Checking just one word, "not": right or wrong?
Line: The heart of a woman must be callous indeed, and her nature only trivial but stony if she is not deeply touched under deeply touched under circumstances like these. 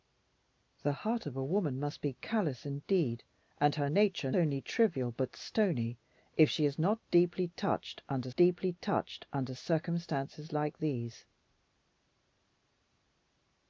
right